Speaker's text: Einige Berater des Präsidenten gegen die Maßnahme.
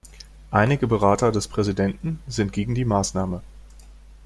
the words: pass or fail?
fail